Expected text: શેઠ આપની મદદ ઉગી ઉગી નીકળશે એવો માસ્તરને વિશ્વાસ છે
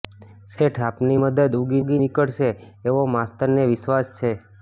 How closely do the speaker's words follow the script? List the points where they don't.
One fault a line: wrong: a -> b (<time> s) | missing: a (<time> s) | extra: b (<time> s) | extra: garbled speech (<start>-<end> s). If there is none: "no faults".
no faults